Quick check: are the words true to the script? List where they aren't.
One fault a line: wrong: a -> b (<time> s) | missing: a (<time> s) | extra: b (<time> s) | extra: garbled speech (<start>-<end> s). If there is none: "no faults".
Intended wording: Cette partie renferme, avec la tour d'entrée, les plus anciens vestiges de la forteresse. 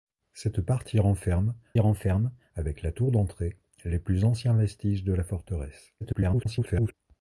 extra: renferme (1.8 s)
extra: garbled speech (6.0-6.9 s)